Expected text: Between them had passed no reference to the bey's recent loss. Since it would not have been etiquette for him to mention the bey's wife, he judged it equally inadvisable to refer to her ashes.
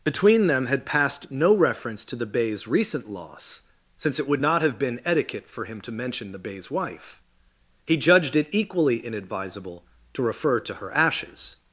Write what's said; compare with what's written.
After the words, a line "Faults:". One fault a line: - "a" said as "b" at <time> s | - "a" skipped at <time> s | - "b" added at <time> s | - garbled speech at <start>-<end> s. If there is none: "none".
Between them had passed no reference to the bey's recent loss. Since it would not have been etiquette for him to mention the bey's wife, he judged it equally inadvisable to refer to her ashes.
Faults:
none